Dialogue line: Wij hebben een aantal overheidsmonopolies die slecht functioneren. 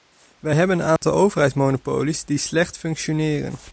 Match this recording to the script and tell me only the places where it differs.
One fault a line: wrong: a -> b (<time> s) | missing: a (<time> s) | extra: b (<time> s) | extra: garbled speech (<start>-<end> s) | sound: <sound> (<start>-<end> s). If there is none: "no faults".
sound: dropout (1.0-1.0 s)